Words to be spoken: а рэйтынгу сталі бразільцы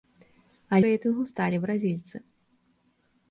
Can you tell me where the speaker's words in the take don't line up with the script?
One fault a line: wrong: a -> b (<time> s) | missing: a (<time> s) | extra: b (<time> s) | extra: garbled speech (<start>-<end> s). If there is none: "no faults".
no faults